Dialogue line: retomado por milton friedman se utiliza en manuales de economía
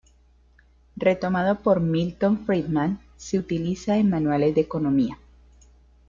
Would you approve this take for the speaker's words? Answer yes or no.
yes